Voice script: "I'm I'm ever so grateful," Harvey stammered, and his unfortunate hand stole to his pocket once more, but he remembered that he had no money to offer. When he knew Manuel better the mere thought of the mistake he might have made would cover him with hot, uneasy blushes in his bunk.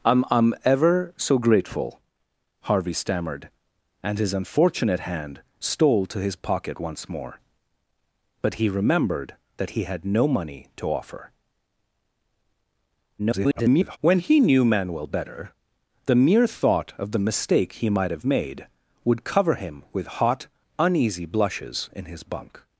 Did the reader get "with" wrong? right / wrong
right